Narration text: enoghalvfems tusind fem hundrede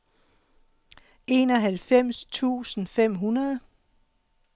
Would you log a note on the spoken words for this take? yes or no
no